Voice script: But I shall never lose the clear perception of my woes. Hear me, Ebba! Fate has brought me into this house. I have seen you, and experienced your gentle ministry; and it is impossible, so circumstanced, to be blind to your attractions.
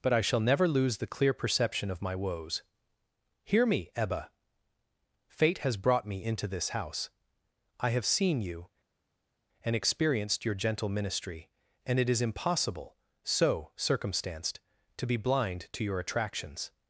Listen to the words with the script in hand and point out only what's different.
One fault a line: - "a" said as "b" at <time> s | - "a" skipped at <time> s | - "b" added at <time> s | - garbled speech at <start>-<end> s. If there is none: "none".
none